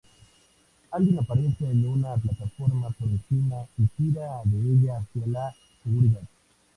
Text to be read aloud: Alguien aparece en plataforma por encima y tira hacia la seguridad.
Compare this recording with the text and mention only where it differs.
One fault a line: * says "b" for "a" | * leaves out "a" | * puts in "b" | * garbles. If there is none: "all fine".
* puts in "una"
* puts in "de ella"